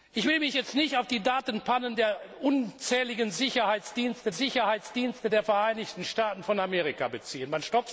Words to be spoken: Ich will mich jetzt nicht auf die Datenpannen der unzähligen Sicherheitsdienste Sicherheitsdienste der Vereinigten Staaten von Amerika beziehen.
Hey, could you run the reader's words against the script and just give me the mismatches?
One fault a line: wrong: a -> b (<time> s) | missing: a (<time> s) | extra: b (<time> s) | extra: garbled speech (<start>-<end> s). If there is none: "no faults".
no faults